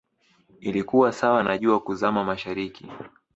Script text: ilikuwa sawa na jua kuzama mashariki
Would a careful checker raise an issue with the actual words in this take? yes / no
no